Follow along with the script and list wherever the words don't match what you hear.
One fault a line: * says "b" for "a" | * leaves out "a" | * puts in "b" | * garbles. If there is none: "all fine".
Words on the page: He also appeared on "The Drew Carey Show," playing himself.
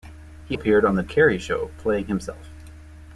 * leaves out "also"
* leaves out "Drew"